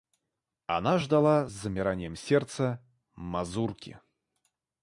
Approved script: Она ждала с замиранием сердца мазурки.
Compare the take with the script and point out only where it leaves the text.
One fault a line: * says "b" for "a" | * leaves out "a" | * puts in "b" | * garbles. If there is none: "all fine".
all fine